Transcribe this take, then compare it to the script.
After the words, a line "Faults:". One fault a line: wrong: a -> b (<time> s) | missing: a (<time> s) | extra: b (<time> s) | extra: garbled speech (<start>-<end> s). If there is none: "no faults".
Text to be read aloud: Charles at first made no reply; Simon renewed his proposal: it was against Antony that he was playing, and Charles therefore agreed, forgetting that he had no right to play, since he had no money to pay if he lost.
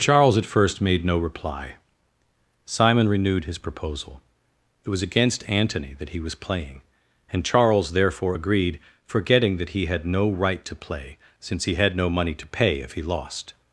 Charles at first made no reply; Simon renewed his proposal: it was against Antony that he was playing, and Charles therefore agreed, forgetting that he had no right to play, since he had no money to pay if he lost.
Faults:
no faults